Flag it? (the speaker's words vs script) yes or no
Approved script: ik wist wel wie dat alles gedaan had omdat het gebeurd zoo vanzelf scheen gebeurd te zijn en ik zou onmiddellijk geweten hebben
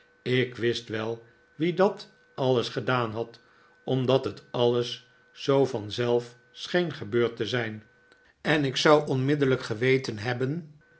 yes